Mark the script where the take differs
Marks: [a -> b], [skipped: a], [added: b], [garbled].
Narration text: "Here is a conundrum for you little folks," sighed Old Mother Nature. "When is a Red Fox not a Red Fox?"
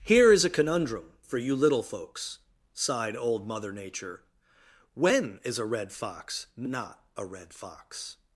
"Here is a conundrum for you little folks," sighed Old Mother Nature. "When is a Red Fox not a Red Fox?"